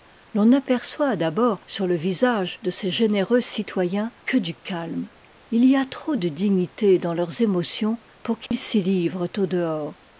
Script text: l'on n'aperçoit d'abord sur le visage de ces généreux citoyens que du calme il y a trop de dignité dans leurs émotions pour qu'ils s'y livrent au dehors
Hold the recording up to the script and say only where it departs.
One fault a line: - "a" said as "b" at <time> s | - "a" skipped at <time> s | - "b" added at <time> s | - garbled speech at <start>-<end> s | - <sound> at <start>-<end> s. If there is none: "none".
- dropout at 8.5-8.5 s